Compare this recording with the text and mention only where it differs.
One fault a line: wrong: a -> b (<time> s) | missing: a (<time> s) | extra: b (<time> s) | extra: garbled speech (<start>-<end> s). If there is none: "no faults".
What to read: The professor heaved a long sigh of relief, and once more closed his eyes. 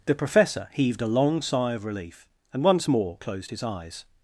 no faults